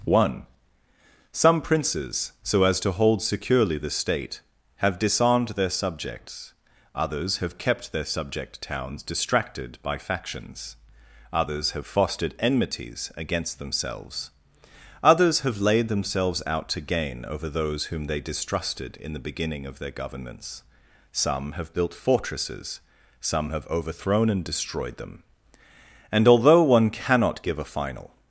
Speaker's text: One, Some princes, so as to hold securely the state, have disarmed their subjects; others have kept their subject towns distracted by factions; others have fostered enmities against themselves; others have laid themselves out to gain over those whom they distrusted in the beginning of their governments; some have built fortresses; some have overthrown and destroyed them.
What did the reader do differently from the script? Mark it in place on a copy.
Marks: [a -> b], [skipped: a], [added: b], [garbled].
One, Some princes, so as to hold securely the state, have disarmed their subjects; others have kept their subject towns distracted by factions; others have fostered enmities against themselves; others have laid themselves out to gain over those whom they distrusted in the beginning of their governments; some have built fortresses; some have overthrown and destroyed them. [added: And although one cannot give a final]